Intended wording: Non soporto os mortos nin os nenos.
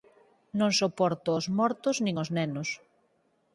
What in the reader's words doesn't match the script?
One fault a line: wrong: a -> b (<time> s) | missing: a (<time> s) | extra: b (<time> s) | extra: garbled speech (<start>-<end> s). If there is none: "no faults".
no faults